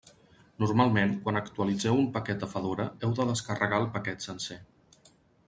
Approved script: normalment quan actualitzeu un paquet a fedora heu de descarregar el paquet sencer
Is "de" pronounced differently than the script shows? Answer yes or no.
no